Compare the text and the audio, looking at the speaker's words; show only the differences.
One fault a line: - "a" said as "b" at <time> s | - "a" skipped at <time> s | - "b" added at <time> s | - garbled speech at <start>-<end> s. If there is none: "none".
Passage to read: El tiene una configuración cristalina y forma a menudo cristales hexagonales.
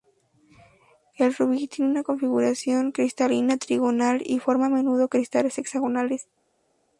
- "rubí" added at 1.4 s
- "trigonal" added at 3.6 s